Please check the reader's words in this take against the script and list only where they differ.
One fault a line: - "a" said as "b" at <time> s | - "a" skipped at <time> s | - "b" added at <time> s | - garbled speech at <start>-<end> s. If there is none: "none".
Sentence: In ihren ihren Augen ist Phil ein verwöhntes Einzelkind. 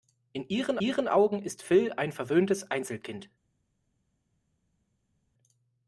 none